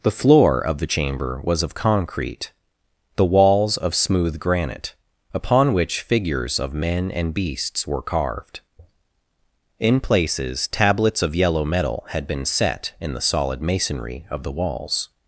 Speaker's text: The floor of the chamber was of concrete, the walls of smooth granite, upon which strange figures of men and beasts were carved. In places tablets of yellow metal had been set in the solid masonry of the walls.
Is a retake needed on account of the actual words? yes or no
yes